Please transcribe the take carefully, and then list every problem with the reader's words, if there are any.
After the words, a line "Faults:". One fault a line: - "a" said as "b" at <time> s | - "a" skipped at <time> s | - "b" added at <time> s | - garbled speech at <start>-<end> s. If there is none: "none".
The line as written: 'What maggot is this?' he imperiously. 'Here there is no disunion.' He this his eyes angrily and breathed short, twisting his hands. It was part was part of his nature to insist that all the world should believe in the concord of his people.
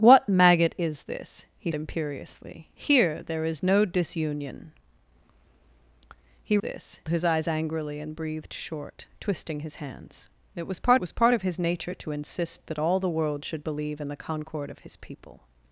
'What maggot is this?' he imperiously. 'Here there is no disunion.' He this his eyes angrily and breathed short, twisting his hands. It was part was part of his nature to insist that all the world should believe in the concord of his people.
Faults:
none